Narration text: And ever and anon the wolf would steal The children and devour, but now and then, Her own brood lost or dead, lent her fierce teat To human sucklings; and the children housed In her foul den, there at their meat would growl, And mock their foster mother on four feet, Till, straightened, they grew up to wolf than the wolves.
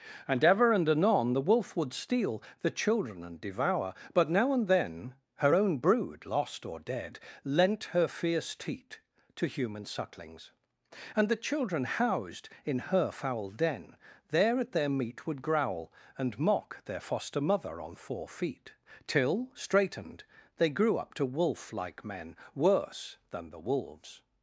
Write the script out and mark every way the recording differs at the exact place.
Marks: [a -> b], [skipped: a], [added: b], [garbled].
And ever and anon the wolf would steal The children and devour, but now and then, Her own brood lost or dead, lent her fierce teat To human sucklings; and the children housed In her foul den, there at their meat would growl, And mock their foster mother on four feet, Till, straightened, they grew up to wolf [added: like men Worse] than the wolves.